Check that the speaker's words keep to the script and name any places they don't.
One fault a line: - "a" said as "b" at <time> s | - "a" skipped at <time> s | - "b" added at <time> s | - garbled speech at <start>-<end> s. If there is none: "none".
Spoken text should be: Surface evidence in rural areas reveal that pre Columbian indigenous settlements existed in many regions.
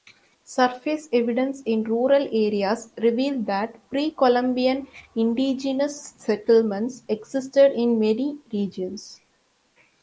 none